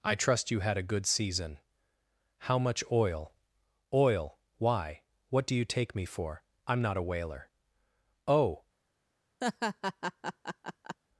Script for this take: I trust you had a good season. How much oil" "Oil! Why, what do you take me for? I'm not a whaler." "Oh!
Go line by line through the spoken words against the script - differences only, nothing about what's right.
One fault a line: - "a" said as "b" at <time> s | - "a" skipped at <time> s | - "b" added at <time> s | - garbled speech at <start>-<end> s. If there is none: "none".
none